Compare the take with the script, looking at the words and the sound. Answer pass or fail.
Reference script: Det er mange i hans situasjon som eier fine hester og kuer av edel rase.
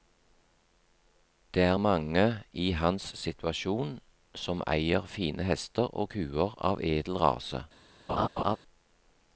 fail